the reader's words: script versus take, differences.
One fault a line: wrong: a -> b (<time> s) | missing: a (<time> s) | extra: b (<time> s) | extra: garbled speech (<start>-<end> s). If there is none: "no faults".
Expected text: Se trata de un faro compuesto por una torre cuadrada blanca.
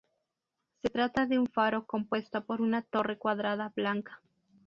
no faults